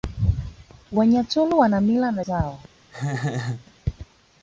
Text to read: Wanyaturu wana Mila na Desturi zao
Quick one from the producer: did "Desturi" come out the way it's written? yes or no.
no